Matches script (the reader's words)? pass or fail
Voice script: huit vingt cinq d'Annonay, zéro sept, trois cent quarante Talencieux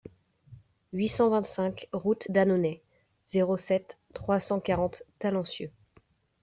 fail